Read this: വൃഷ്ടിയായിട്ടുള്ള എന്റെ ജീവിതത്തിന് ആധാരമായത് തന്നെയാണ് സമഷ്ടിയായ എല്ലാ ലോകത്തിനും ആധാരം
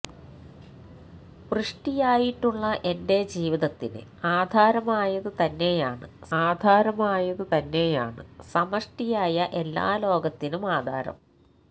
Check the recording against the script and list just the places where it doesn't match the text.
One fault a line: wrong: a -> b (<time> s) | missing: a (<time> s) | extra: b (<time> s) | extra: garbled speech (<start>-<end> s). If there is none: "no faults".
extra: ആധാരമായത് തന്നെയാണ് (6.4 s)